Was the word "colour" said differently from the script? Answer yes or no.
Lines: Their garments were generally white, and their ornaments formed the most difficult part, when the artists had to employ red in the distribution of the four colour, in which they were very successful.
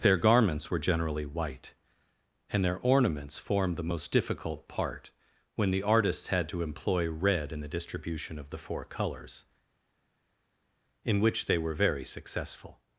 yes